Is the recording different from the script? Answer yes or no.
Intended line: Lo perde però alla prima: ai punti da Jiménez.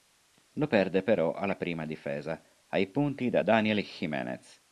yes